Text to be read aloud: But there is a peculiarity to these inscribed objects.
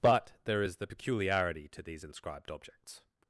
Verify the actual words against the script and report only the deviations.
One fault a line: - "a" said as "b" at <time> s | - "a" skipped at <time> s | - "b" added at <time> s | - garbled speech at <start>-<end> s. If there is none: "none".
- "a" said as "the" at 0.8 s